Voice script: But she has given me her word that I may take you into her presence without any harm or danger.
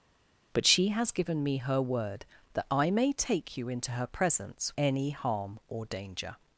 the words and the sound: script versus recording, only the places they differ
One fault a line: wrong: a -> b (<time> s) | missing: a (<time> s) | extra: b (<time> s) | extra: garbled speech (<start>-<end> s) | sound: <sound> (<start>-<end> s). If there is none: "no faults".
missing: without (4.7 s)